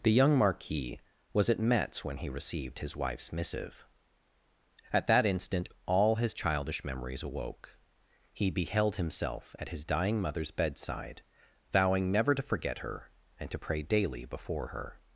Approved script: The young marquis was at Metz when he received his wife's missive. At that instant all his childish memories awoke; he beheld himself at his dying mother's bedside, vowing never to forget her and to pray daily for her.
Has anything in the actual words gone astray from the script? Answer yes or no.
yes